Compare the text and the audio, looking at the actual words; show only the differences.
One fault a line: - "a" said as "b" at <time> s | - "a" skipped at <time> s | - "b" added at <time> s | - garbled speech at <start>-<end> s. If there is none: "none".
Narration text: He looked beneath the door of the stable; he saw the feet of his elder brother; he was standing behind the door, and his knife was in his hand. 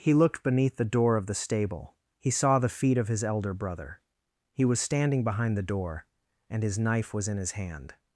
none